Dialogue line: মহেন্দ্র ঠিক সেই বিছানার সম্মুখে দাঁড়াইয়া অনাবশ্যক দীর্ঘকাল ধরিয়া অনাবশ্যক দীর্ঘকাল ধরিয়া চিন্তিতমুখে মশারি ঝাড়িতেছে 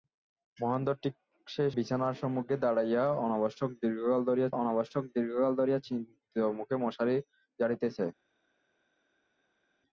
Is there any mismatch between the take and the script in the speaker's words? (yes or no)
no